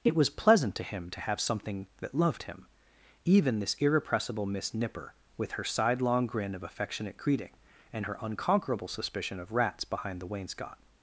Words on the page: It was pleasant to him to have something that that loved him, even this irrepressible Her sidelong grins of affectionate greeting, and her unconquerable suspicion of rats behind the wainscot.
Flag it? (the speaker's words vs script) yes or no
yes